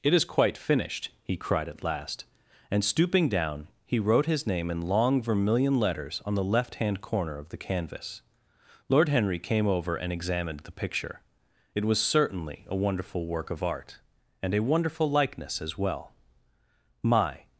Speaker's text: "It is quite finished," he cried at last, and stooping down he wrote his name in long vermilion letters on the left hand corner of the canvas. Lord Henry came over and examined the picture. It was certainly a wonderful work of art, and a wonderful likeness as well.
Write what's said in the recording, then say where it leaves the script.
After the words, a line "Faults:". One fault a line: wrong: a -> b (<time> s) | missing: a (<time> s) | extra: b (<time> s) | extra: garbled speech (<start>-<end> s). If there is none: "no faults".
"It is quite finished," he cried at last, and stooping down he wrote his name in long vermilion letters on the left hand corner of the canvas. Lord Henry came over and examined the picture. It was certainly a wonderful work of art, and a wonderful likeness as well. "My
Faults:
extra: My (17.0 s)